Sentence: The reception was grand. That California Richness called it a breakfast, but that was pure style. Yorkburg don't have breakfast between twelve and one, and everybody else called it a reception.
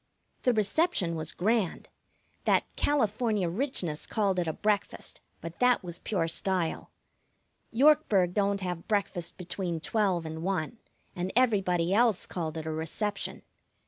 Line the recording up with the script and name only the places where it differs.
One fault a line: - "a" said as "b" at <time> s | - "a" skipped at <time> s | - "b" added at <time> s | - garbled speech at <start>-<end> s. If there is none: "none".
none